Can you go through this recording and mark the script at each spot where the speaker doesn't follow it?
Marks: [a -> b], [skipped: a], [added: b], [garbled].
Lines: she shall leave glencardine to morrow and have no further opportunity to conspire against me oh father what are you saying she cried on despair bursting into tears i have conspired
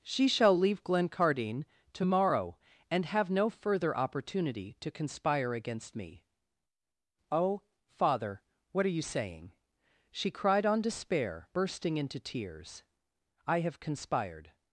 she shall leave glencardine to morrow and have no further opportunity to conspire against me oh father what are you saying she cried on despair bursting into tears i have conspired